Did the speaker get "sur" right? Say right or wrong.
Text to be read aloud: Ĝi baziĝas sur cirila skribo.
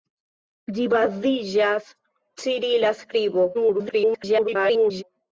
wrong